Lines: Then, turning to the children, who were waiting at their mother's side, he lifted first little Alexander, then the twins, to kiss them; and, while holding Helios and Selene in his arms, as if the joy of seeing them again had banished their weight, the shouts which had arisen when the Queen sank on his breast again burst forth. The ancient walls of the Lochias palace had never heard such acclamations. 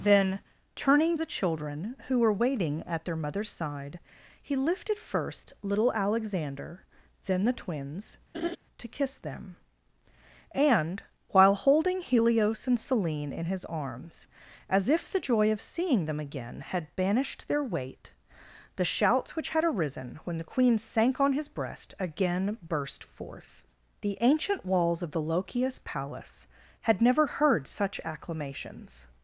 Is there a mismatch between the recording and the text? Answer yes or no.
yes